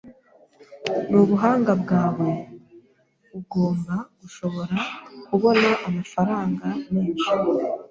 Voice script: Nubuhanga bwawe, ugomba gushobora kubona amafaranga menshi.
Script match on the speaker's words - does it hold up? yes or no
yes